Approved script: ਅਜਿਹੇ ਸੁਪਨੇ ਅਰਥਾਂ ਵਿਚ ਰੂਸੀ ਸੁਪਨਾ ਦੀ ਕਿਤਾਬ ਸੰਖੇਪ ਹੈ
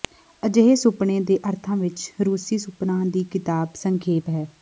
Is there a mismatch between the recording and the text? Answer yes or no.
yes